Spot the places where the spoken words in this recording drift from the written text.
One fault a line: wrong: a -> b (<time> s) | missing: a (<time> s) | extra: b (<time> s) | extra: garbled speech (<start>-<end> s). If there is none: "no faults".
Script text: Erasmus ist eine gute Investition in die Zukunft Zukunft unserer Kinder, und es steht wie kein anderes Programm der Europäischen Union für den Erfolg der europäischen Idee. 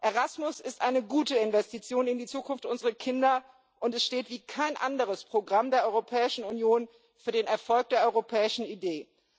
missing: Zukunft (2.7 s)